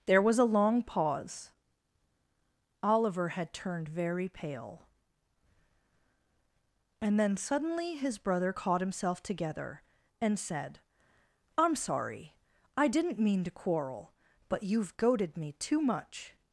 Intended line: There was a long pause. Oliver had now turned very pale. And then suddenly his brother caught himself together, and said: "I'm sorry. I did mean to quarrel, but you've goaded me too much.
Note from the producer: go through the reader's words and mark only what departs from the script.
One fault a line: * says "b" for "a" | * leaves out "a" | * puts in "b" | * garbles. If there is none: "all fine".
* leaves out "now"
* says "didn't" for "did"